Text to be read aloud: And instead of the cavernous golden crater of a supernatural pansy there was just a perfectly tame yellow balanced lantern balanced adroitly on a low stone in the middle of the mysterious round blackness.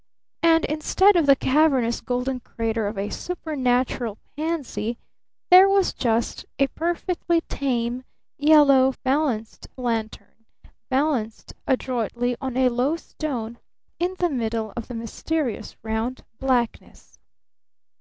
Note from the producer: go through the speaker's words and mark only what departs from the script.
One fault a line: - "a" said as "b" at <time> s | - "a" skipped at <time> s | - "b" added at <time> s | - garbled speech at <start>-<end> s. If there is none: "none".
none